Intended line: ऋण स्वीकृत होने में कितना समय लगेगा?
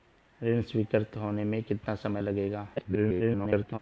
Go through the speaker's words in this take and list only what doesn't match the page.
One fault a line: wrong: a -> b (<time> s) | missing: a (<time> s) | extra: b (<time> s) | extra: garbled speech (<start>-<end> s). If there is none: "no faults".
extra: garbled speech (2.8-3.8 s)